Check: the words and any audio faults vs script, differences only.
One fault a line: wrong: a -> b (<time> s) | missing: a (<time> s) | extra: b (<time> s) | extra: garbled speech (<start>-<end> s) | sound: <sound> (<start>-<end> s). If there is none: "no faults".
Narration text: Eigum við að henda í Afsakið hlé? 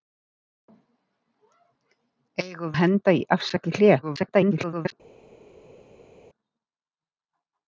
missing: við (2.8 s)
extra: garbled speech (4.0-4.9 s)